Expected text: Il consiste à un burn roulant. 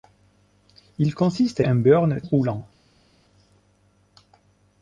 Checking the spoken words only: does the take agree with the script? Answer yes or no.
yes